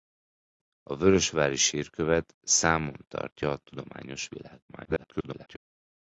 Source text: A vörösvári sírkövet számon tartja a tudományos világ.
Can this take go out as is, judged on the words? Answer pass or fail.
fail